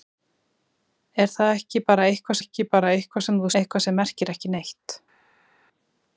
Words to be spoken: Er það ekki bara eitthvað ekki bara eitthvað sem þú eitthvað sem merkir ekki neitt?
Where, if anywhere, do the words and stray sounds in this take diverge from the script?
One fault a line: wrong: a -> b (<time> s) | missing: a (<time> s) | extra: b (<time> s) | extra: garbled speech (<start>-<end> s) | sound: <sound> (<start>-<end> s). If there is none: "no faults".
no faults